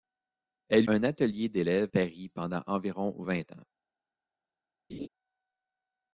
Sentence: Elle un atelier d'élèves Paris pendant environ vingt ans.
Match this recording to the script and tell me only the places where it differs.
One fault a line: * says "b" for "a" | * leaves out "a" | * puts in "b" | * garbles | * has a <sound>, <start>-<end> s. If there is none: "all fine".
* has a laugh, 4.9-5.1 s